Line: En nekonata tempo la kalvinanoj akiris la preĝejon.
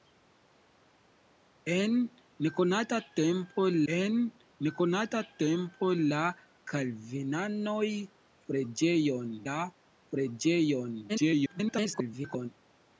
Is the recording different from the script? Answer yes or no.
yes